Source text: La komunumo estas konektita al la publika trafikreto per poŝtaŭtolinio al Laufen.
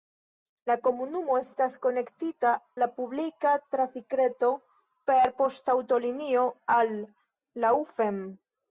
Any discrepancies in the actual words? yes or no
yes